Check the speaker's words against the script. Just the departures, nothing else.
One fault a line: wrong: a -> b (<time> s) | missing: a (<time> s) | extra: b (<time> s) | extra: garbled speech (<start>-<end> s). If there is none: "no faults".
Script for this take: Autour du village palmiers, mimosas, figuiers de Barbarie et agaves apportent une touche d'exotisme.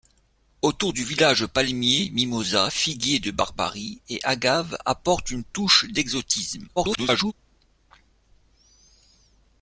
extra: garbled speech (6.8-7.3 s)